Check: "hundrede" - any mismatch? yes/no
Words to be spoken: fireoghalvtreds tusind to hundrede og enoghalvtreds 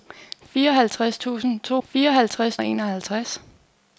yes